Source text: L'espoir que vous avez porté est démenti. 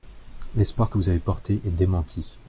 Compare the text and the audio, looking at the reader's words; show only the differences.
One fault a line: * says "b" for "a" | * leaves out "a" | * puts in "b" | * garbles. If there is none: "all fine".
all fine